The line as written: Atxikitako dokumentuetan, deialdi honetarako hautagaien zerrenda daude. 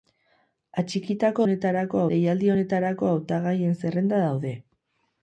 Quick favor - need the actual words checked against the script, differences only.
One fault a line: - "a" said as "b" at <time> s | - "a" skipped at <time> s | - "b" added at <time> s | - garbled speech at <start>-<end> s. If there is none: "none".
- "dokumentuetan" said as "honetarako" at 1.5 s